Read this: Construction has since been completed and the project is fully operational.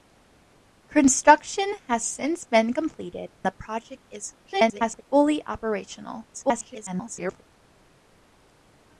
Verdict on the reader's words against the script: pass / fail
fail